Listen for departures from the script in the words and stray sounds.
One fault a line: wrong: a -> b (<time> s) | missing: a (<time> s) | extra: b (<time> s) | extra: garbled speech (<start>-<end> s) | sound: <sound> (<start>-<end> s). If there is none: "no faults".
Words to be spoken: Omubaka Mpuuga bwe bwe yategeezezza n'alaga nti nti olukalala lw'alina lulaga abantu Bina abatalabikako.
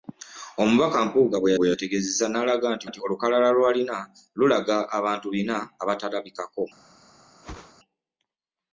sound: whoosh (7.4-7.7 s)